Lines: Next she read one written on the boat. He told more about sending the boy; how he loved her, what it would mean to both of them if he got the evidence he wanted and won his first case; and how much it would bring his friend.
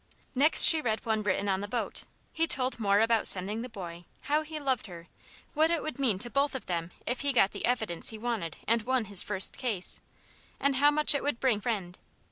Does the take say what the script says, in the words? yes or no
no